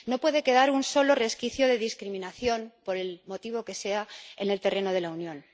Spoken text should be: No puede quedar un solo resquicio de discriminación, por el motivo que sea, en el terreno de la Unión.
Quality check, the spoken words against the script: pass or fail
pass